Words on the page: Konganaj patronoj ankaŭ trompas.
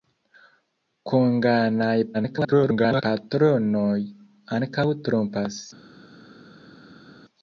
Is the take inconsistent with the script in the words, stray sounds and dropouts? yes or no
yes